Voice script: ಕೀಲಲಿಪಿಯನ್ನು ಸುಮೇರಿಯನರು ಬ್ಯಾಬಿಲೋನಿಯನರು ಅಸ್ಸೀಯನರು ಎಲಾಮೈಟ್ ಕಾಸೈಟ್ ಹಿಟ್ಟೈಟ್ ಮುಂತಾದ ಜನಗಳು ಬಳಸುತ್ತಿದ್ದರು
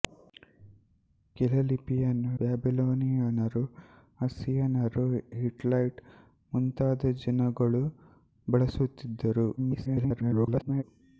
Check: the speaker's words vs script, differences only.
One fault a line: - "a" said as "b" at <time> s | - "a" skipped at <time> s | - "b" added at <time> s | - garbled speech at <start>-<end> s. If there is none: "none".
- "ಸುಮೇರಿಯನರು" skipped at 2.3 s
- "ಎಲಾಮೈಟ್ ಕಾಸೈಟ್" skipped at 5.1 s
- garbled speech at 9.6-10.8 s